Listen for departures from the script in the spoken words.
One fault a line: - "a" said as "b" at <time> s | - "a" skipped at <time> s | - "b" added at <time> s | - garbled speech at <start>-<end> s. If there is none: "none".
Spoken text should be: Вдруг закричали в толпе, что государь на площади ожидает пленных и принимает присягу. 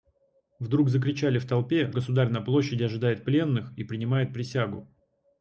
- "что" skipped at 1.9 s